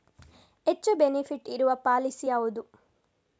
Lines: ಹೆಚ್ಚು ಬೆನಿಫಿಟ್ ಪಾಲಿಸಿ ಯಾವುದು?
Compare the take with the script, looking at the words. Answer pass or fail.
fail